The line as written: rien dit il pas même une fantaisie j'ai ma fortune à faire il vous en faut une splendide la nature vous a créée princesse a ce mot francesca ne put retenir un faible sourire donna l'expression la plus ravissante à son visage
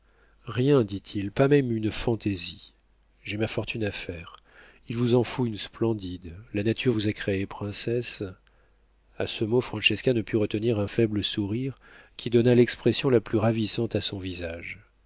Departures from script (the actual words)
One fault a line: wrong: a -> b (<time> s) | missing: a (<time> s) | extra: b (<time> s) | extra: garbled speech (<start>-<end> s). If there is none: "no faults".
extra: qui (12.1 s)